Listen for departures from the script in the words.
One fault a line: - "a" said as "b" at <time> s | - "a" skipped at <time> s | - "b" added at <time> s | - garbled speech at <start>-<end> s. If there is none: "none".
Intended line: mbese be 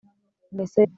none